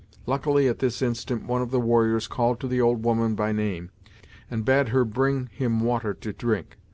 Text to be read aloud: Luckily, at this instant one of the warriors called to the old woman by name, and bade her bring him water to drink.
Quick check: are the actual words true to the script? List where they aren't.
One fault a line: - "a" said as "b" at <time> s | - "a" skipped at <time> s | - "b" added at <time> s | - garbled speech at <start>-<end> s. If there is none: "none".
none